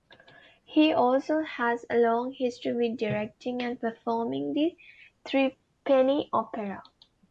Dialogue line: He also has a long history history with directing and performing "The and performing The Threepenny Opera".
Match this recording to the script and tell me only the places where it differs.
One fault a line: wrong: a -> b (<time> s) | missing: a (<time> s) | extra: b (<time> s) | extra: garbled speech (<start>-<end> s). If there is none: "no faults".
missing: history (2.7 s)
missing: and performing The (4.8 s)